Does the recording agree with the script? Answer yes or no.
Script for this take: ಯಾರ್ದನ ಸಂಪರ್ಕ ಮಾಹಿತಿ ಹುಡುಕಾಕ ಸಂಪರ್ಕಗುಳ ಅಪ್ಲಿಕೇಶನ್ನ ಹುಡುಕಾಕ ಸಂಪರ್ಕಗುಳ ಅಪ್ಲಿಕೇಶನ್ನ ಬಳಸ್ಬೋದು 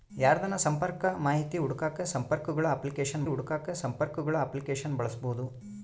yes